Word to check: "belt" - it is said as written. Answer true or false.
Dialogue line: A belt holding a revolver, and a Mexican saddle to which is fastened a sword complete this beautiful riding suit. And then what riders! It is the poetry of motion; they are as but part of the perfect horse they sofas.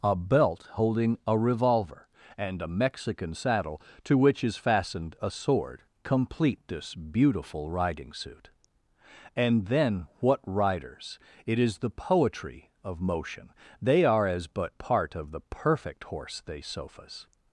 true